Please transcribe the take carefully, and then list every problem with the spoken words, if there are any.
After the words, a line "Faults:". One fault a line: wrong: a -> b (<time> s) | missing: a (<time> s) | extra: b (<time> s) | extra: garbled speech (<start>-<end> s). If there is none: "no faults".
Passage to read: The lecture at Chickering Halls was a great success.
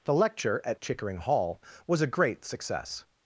The lecture at Chickering Hall was a great success.
Faults:
wrong: Halls -> Hall (1.2 s)